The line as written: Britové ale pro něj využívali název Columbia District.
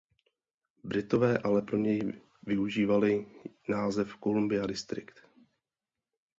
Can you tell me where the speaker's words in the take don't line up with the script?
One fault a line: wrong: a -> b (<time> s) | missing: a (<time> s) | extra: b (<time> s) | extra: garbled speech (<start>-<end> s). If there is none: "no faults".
no faults